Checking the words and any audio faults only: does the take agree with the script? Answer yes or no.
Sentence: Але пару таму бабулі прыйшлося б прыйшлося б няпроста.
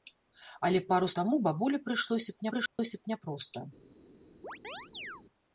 no